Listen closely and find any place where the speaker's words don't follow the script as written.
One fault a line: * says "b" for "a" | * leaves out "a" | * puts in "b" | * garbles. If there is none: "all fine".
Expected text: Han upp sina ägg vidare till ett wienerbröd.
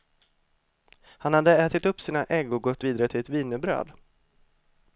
* puts in "hade ätit"
* puts in "och gått"